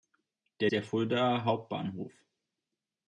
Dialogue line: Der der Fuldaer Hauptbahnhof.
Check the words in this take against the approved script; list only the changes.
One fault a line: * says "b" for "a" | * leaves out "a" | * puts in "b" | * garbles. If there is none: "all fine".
all fine